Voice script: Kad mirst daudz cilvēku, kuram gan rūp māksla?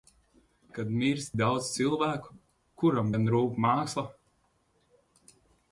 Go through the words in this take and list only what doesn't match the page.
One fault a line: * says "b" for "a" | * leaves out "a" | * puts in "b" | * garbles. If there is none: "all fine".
all fine